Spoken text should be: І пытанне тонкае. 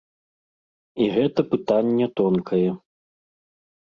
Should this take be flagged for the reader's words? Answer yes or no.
yes